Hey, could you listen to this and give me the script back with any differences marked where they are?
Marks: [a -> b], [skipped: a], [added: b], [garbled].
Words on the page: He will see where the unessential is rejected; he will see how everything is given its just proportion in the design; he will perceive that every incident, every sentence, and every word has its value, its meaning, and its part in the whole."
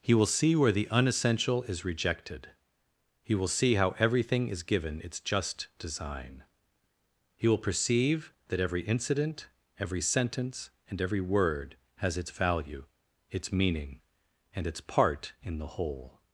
He will see where the unessential is rejected; he will see how everything is given its just [skipped: proportion in the] design; he will perceive that every incident, every sentence, and every word has its value, its meaning, and its part in the whole."